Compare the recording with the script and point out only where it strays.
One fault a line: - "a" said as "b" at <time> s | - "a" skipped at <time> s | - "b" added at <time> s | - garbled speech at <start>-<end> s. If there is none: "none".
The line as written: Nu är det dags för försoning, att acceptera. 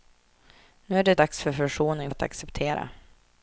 none